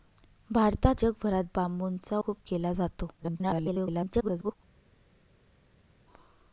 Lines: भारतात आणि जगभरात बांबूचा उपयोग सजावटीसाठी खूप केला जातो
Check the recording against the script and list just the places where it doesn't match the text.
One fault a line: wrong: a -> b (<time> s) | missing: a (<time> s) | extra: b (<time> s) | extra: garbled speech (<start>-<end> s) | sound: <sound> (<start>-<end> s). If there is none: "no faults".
missing: आणि (1.0 s)
missing: उपयोग सजावटीसाठी (2.2 s)
extra: garbled speech (3.2-4.6 s)